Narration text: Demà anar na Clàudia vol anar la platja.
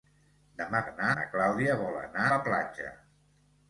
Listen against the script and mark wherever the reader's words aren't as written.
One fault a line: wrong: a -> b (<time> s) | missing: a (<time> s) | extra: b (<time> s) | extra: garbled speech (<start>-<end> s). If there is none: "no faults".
no faults